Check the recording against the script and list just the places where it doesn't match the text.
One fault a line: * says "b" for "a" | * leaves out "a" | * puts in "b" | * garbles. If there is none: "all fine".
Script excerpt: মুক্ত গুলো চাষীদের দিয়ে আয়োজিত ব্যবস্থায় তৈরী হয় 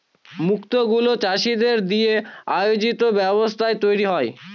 all fine